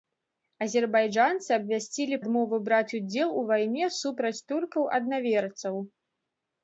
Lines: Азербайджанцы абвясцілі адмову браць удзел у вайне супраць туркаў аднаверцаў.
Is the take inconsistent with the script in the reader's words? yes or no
no